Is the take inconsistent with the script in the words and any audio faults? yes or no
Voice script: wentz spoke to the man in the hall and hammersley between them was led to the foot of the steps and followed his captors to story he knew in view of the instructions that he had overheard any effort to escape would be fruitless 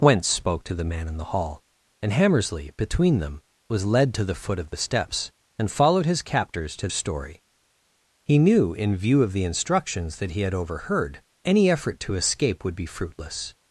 no